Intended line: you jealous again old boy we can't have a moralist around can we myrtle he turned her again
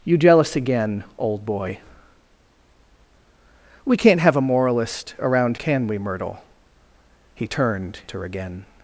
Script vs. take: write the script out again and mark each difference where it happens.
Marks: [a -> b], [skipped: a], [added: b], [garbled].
you jealous again old boy we can't have a moralist around can we myrtle he turned her again